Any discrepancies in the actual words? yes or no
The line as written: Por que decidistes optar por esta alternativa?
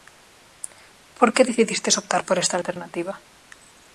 no